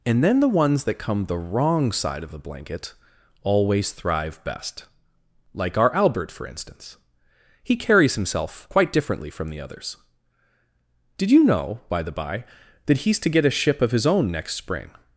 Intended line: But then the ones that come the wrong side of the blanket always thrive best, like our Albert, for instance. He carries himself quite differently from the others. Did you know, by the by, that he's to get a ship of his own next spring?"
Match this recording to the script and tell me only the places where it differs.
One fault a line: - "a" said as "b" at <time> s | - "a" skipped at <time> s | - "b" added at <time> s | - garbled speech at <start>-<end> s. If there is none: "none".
- "But" said as "And" at 0.1 s